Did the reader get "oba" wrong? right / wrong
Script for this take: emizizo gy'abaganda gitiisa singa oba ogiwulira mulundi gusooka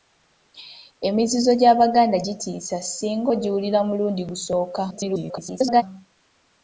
wrong